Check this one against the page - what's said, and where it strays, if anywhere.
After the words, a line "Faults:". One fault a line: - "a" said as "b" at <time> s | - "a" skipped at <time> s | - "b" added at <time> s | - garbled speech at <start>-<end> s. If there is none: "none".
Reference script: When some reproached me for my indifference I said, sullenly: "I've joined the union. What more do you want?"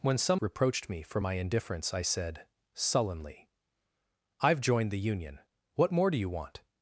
When some reproached me for my indifference I said, sullenly: "I've joined the union. What more do you want?"
Faults:
none